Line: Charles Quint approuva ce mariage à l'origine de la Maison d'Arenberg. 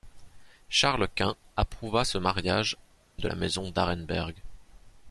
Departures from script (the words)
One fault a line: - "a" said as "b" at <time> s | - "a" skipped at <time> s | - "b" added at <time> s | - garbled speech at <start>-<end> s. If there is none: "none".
- "à l'origine" skipped at 2.8 s